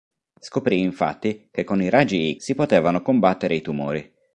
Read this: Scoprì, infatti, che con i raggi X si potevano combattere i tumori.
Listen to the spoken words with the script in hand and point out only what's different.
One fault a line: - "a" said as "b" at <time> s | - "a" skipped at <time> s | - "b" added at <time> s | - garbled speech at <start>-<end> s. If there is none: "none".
- "X" skipped at 2.4 s